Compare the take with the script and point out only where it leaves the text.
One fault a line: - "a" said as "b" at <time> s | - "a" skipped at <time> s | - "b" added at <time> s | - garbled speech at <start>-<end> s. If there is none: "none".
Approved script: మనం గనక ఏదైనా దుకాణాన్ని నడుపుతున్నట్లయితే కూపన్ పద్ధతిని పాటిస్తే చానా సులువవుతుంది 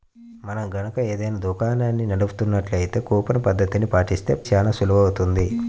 none